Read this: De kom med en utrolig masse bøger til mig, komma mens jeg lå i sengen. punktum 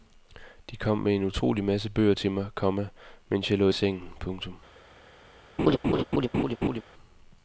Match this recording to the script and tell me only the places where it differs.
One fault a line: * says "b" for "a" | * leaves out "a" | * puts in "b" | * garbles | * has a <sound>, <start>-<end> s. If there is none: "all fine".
* has a laugh, 5.6-6.8 s